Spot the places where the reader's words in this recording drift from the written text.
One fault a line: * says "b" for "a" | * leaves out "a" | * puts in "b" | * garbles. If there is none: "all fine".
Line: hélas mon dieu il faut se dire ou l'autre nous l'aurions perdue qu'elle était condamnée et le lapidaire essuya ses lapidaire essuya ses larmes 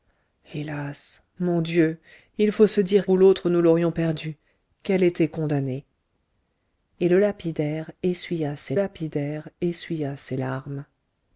all fine